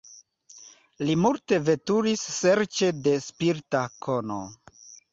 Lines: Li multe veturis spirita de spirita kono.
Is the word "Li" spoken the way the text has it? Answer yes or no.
yes